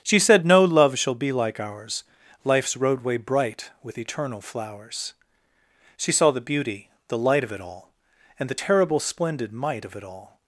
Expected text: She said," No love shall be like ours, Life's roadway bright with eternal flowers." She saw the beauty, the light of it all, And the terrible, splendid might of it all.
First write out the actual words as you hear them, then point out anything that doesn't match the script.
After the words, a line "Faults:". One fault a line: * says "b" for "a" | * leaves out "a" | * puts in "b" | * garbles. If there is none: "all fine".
She said," No love shall be like ours, Life's roadway bright with eternal flowers." She saw the beauty, the light of it all, And the terrible, splendid might of it all.
Faults:
all fine